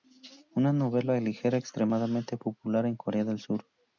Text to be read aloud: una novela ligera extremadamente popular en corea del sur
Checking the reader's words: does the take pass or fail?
pass